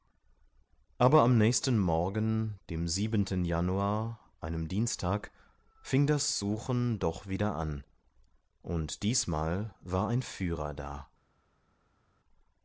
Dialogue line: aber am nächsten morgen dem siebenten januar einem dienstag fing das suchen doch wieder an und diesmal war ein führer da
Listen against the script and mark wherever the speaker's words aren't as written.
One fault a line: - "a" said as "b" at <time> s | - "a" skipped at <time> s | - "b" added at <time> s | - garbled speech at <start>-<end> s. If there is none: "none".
none